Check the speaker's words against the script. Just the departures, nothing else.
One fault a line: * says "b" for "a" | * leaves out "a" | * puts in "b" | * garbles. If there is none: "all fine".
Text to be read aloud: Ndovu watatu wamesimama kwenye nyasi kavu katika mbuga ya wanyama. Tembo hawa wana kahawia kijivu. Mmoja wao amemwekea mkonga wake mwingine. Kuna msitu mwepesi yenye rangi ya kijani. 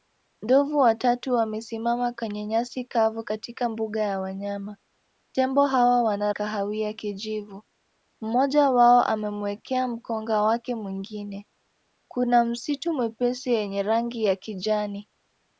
all fine